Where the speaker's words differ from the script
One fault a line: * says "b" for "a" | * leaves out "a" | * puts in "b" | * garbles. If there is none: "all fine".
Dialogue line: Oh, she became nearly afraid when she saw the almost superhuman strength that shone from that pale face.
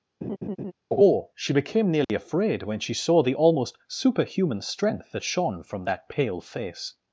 all fine